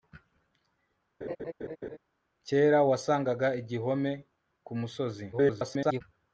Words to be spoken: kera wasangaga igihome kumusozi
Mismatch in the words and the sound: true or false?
true